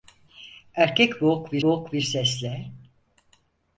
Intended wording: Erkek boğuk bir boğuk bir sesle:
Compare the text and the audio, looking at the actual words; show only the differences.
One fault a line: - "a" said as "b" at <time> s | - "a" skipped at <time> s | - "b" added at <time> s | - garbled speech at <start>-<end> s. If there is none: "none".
none